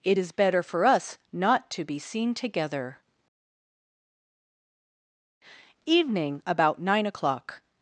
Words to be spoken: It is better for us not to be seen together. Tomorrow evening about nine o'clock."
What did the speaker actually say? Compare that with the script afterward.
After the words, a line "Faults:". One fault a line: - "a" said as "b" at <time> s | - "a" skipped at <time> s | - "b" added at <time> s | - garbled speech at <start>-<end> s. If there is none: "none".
It is better for us not to be seen together. evening about nine o'clock."
Faults:
- "Tomorrow" skipped at 3.0 s